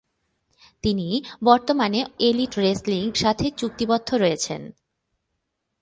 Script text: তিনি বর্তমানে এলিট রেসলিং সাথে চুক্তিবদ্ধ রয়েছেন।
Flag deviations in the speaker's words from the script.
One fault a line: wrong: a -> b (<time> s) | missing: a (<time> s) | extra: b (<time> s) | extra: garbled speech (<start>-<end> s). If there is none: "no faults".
no faults